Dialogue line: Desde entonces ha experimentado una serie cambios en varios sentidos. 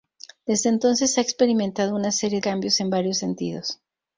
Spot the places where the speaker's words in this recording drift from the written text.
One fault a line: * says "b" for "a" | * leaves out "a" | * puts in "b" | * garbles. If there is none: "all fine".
all fine